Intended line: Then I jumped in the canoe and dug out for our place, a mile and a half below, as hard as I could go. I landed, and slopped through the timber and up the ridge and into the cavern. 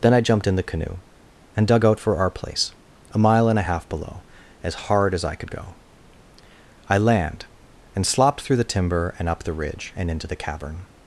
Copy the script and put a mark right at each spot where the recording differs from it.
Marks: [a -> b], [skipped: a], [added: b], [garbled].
Then I jumped in the canoe and dug out for our place, a mile and a half below, as hard as I could go. I [landed, -> land] and slopped through the timber and up the ridge and into the cavern.